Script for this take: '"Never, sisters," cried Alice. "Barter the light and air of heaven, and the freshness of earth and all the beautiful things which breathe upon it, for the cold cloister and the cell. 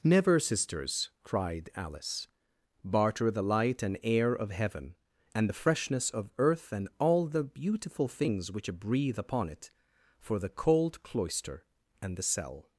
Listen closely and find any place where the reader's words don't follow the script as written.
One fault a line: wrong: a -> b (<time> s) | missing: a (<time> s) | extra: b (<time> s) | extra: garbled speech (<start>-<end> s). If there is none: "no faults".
no faults